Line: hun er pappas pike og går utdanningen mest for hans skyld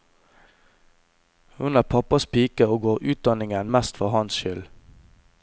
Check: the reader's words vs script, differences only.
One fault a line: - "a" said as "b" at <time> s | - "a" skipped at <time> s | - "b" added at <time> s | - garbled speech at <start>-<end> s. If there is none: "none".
none